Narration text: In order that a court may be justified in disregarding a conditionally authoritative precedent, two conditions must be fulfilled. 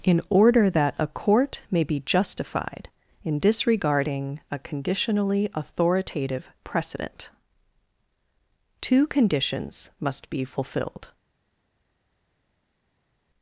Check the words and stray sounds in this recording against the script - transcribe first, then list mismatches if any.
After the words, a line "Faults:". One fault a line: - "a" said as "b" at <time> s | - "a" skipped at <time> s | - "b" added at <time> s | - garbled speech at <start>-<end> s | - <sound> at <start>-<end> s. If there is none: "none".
In order that a court may be justified in disregarding a conditionally authoritative precedent, two conditions must be fulfilled.
Faults:
none